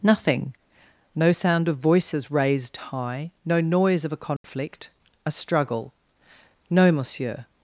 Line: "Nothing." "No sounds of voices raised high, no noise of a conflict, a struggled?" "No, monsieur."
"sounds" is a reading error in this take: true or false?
true